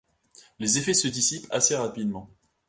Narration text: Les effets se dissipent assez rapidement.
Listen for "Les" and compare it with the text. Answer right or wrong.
right